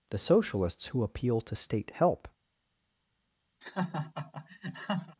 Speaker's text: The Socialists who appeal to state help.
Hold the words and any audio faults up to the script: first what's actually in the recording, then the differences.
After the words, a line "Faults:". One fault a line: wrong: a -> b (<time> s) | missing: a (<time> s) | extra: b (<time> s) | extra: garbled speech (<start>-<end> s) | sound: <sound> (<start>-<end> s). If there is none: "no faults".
The Socialists who appeal to state help.
Faults:
sound: laugh (3.6-5.2 s)